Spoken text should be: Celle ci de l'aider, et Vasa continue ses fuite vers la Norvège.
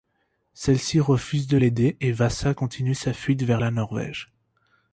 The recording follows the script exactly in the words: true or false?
false